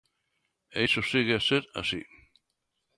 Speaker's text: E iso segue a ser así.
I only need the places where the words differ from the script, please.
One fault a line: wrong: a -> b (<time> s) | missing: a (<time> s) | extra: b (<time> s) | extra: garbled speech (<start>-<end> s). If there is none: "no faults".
no faults